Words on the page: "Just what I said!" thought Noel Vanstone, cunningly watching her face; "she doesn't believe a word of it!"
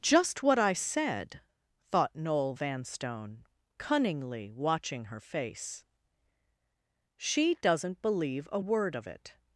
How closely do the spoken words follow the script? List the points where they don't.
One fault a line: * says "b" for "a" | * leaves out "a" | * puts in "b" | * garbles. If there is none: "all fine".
all fine